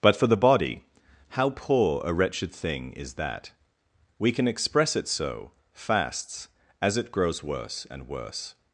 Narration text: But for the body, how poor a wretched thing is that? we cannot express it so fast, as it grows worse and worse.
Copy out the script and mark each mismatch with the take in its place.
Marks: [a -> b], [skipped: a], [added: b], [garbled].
But for the body, how poor a wretched thing is that? we [cannot -> can] express it so [fast, -> fasts] as it grows worse and worse.